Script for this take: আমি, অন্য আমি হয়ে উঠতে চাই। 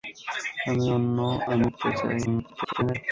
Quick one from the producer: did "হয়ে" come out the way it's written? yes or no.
no